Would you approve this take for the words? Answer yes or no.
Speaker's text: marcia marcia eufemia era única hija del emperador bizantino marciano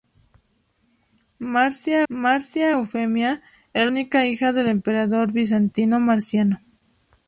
yes